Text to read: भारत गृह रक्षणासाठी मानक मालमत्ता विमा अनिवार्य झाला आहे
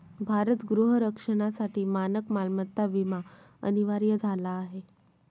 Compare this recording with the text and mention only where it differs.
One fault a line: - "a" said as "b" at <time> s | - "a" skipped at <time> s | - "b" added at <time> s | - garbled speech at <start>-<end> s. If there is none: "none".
none